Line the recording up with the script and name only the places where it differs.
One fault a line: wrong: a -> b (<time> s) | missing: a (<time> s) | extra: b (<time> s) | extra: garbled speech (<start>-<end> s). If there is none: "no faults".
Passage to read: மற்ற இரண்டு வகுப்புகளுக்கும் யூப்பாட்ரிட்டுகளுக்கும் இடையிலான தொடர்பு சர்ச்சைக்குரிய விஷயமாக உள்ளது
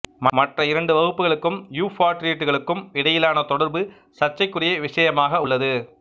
no faults